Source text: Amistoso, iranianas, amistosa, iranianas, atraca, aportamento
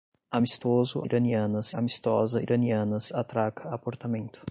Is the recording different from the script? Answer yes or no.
no